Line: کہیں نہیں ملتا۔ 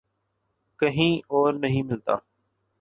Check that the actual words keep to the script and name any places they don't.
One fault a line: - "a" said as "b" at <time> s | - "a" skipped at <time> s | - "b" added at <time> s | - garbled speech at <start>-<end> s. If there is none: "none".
- "اور" added at 1.3 s